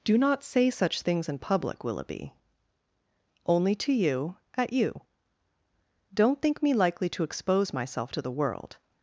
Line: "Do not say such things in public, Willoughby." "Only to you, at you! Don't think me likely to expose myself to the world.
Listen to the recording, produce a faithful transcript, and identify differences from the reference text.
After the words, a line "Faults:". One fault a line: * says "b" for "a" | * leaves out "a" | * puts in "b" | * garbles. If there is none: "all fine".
"Do not say such things in public, Willoughby." "Only to you, at you! Don't think me likely to expose myself to the world.
Faults:
all fine